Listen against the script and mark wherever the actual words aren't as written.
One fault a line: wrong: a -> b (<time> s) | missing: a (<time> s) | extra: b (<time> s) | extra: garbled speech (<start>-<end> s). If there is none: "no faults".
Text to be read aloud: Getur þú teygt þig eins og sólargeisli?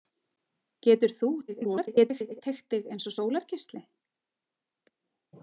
extra: garbled speech (1.5-2.4 s)